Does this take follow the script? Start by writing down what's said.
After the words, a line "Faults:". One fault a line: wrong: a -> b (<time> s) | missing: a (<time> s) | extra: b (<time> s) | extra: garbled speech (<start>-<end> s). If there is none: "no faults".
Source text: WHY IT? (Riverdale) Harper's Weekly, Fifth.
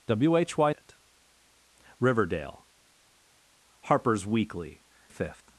WHY IT? (Riverdale) Harper's Weekly, Fifth.
Faults:
no faults